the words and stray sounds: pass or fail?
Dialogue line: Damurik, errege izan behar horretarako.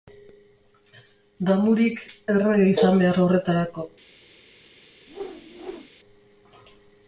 fail